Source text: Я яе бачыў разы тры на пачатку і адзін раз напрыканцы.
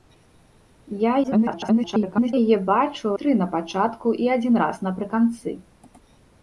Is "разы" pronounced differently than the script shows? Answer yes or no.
yes